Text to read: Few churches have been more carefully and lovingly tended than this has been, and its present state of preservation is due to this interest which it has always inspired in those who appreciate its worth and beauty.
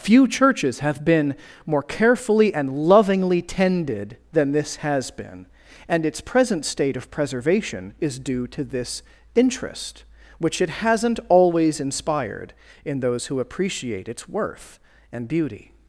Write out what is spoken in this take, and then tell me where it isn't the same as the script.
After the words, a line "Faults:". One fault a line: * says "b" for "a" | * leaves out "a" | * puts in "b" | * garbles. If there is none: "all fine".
Few churches have been more carefully and lovingly tended than this has been, and its present state of preservation is due to this interest which it hasn't always inspired in those who appreciate its worth and beauty.
Faults:
* says "hasn't" for "has"